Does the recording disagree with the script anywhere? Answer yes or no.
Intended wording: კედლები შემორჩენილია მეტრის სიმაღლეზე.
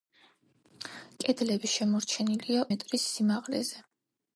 no